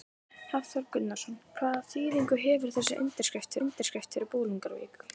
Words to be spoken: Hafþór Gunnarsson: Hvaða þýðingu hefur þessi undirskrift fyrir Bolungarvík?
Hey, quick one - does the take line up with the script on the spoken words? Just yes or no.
no